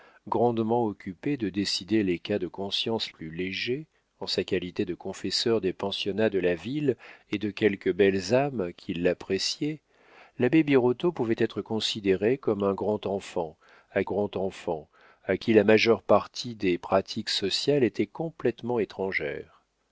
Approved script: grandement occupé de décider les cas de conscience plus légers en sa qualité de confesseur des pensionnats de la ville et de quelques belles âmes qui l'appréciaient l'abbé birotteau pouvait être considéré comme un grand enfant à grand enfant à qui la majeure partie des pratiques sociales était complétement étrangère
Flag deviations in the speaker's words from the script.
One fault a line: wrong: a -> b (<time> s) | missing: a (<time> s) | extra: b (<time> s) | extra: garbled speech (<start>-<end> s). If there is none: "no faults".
no faults